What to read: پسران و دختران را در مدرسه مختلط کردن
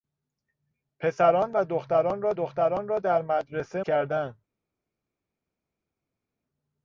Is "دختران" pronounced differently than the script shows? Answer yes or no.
no